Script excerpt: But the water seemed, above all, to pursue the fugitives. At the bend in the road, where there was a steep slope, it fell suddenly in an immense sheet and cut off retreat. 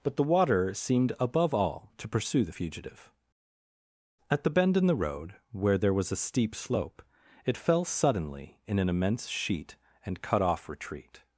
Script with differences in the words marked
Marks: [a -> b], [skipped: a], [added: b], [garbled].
But the water seemed, above all, to pursue the [fugitives. -> fugitive] At the bend in the road, where there was a steep slope, it fell suddenly in an immense sheet and cut off retreat.